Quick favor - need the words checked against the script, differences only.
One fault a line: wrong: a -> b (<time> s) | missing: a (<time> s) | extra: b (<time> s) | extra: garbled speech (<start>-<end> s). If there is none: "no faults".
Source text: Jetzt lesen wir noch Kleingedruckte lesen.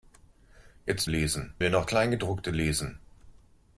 no faults